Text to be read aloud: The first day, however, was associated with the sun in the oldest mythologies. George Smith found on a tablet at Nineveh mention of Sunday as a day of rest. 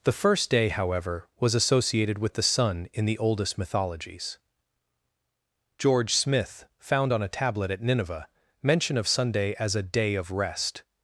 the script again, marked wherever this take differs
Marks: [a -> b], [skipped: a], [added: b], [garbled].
The first day, however, was associated with the sun in the oldest mythologies. George Smith found on a tablet at Nineveh mention of Sunday as a day of rest.